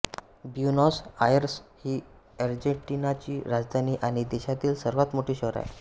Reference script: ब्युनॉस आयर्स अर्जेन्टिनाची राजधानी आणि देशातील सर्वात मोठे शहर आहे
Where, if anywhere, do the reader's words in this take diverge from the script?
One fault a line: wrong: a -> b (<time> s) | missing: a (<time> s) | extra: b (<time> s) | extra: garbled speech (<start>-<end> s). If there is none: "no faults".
extra: ही (1.8 s)